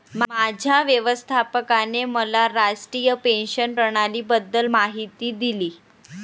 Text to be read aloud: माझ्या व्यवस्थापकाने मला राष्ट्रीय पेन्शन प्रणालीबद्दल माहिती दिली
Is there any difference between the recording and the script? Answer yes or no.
no